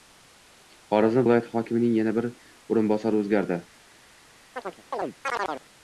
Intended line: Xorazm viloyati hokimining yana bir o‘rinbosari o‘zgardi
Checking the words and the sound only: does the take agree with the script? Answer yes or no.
no